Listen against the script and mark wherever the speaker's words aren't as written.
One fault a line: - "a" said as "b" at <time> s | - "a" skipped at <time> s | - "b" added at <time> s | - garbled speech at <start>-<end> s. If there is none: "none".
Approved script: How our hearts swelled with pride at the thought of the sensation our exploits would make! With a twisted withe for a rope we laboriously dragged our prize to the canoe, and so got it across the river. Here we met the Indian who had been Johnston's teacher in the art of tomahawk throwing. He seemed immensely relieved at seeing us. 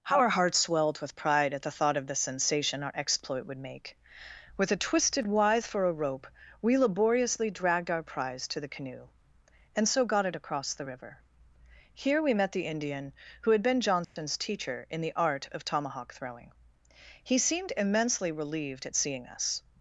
- "exploits" said as "exploit" at 2.9 s